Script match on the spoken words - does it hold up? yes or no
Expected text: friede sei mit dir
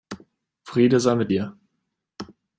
yes